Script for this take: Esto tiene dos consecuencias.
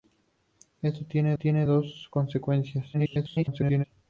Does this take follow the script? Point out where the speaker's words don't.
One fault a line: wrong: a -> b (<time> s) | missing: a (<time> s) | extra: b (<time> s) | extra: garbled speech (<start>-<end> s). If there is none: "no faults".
extra: tiene (1.4 s)
extra: garbled speech (2.9-3.8 s)